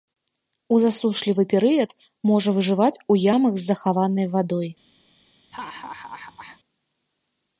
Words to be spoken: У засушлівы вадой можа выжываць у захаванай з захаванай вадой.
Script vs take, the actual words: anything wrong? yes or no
yes